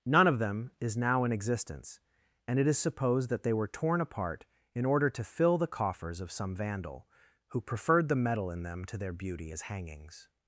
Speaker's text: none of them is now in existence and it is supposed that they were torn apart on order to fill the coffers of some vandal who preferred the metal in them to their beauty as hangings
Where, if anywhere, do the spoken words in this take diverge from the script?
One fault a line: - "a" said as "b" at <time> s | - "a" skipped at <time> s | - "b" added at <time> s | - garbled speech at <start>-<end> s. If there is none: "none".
- "on" said as "in" at 4.7 s